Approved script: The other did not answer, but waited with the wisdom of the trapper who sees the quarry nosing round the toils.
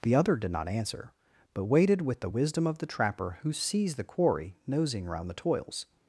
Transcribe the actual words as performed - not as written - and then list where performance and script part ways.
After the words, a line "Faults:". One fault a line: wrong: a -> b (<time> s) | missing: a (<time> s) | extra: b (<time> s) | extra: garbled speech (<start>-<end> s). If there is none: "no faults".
The other did not answer, but waited with the wisdom of the trapper who sees the quarry nosing round the toils.
Faults:
no faults